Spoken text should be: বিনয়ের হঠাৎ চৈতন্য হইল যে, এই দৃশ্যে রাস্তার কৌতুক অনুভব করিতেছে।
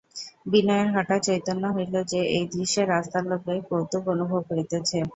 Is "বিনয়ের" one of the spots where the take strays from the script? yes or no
no